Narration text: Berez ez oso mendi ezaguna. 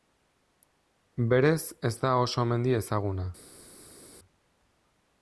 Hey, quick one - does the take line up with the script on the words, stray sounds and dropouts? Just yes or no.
no